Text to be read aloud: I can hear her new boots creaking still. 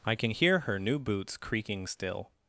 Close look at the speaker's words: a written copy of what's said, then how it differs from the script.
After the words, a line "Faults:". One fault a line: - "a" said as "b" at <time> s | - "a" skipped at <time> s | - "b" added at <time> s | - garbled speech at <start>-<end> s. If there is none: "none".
I can hear her new boots creaking still.
Faults:
none